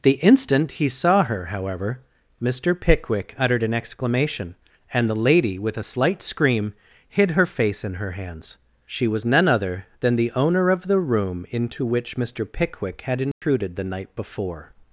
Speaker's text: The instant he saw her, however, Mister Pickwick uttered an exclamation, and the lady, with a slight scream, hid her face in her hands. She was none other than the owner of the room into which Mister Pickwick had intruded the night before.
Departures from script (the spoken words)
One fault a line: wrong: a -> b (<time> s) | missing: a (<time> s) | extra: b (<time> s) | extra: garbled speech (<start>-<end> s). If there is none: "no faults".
no faults